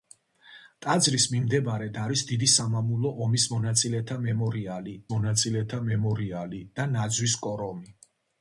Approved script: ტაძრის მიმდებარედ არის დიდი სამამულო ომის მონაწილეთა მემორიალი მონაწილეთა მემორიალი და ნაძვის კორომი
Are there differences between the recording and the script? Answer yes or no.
no